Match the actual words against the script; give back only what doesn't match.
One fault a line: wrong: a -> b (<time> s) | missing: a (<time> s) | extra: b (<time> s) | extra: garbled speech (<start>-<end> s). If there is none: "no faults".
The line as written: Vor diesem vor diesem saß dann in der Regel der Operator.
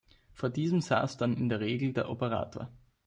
missing: vor diesem (0.8 s)